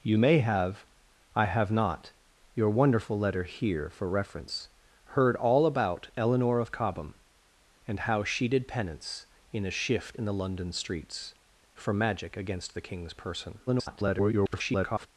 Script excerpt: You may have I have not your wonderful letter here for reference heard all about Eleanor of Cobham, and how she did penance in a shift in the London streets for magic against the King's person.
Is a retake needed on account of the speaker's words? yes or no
yes